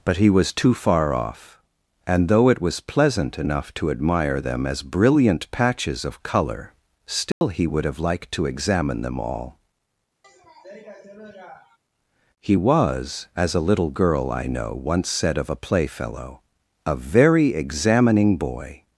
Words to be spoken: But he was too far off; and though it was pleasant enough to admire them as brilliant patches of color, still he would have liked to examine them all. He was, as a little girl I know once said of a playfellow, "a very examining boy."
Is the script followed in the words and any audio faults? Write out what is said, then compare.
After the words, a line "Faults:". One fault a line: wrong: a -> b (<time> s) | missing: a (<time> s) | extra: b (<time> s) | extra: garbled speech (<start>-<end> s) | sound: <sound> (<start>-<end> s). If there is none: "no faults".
But he was too far off; and though it was pleasant enough to admire them as brilliant patches of color, still he would have liked to examine them all. He was, as a little girl I know once said of a playfellow, "a very examining boy."
Faults:
sound: dropout (7.3-7.4 s)
sound: sniff (10.2-11.8 s)